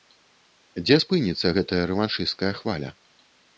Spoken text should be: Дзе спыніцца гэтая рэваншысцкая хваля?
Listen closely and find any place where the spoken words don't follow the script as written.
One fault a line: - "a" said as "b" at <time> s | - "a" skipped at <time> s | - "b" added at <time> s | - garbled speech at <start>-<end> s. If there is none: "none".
none